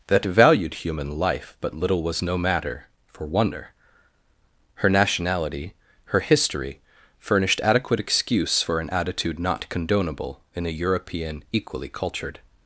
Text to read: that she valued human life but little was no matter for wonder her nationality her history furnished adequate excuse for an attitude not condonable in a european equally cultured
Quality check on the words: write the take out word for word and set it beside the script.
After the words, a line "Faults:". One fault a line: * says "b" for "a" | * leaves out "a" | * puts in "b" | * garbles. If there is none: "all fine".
that valued human life but little was no matter for wonder her nationality her history furnished adequate excuse for an attitude not condonable in a european equally cultured
Faults:
* leaves out "she"